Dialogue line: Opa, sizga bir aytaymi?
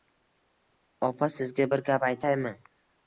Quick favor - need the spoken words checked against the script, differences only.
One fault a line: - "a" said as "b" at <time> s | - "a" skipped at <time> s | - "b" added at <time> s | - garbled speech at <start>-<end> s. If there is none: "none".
- "gap" added at 1.9 s